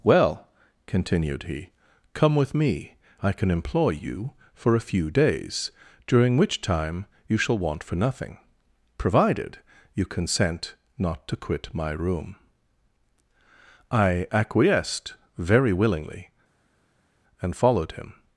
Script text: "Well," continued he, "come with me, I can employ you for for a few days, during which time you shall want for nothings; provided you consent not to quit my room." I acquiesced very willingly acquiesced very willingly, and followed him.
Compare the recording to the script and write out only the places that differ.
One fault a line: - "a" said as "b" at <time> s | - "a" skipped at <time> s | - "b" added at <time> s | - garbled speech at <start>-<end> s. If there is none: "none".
- "for" skipped at 4.7 s
- "nothings" said as "nothing" at 8.0 s
- "acquiesced very willingly" skipped at 16.3 s